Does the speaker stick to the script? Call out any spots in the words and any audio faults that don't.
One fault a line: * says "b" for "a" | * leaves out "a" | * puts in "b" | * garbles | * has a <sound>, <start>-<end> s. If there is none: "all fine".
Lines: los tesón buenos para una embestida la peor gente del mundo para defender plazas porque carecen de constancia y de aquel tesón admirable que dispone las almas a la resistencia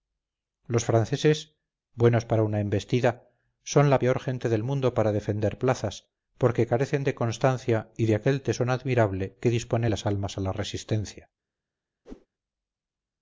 * says "franceses" for "tesón"
* puts in "son"
* has a whoosh, 12.1-12.3 s